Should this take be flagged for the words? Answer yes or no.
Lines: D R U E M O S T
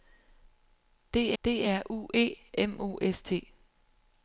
yes